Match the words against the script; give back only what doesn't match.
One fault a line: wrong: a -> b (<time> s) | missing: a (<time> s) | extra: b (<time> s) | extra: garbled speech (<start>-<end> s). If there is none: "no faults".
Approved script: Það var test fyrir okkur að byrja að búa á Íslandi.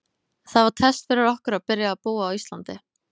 no faults